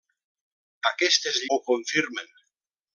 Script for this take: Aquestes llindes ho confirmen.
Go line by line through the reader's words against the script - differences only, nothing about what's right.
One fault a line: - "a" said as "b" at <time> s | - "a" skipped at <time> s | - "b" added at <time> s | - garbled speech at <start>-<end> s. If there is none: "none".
- "llindes" skipped at 1.4 s